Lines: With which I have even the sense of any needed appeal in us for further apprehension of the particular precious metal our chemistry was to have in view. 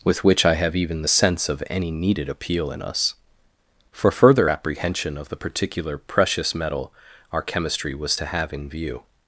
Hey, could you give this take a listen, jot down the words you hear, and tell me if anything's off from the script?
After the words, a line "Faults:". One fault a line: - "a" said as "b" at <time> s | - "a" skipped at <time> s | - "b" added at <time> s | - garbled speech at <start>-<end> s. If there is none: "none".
With which I have even the sense of any needed appeal in us for further apprehension of the particular precious metal our chemistry was to have in view.
Faults:
none